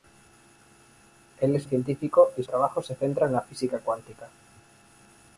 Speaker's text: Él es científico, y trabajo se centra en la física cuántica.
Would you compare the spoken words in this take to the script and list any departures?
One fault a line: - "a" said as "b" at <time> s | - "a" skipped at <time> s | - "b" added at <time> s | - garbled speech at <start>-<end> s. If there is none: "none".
none